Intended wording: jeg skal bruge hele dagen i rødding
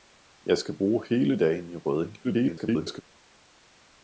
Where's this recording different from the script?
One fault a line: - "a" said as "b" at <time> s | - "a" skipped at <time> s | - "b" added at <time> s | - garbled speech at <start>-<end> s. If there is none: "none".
- garbled speech at 2.2-3.0 s